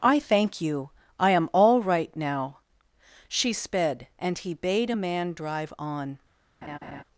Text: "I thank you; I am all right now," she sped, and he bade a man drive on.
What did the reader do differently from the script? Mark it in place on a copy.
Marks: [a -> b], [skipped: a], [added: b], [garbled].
"I thank you; I am all right now," she sped, and he bade a man drive on.